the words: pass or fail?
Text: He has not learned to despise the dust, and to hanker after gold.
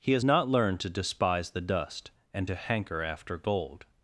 pass